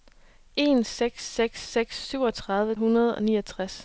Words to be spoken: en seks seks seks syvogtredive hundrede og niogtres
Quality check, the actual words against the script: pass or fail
pass